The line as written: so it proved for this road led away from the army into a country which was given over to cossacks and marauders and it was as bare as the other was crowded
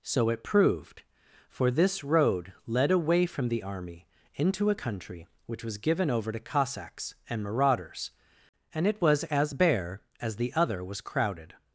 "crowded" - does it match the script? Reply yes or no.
yes